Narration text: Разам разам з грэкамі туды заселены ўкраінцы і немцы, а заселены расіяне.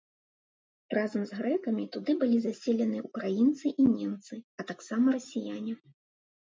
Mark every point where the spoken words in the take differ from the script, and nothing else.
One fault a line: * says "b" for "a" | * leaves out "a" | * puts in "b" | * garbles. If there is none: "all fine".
* leaves out "разам"
* puts in "былі"
* says "таксама" for "заселены"